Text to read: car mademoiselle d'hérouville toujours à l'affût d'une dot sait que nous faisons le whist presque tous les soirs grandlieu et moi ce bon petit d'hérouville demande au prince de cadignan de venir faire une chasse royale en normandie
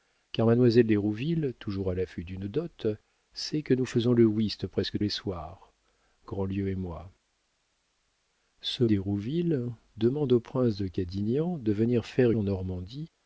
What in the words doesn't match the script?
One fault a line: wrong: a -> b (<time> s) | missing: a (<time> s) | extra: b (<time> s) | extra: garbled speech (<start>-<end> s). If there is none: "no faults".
missing: tous (5.0 s)
missing: bon petit (8.8 s)
missing: une chasse royale (12.3 s)